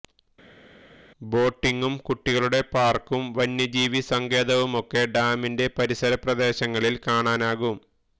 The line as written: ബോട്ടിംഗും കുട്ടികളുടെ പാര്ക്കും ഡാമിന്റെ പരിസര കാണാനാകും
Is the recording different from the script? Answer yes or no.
yes